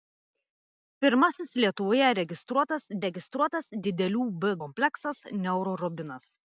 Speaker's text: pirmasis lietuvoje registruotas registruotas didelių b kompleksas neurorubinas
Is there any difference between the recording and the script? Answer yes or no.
no